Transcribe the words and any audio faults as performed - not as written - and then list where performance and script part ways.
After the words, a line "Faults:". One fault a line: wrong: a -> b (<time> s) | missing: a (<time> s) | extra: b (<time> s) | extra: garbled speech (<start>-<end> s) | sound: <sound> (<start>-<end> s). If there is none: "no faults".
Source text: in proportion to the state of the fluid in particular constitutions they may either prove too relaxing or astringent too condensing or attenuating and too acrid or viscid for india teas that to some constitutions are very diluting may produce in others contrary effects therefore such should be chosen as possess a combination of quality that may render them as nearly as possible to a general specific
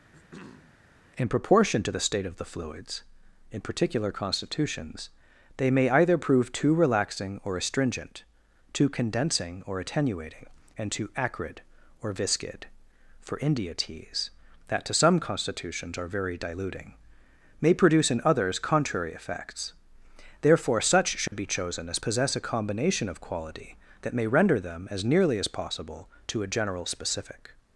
in proportion to the state of the fluids in particular constitutions they may either prove too relaxing or astringent too condensing or attenuating and too acrid or viscid for india teas that to some constitutions are very diluting may produce in others contrary effects therefore such should be chosen as possess a combination of quality that may render them as nearly as possible to a general specific
Faults:
sound: throat clearing (0.1-0.8 s)
wrong: fluid -> fluids (2.4 s)
sound: dropout (21.3-21.3 s)